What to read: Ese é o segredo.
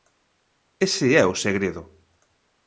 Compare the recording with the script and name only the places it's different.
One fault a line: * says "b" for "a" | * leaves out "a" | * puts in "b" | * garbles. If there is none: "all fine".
all fine